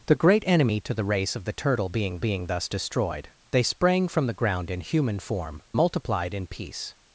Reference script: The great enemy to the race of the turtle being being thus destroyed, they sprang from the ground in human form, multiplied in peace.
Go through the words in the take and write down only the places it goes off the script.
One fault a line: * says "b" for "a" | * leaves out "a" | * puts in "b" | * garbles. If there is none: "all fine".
all fine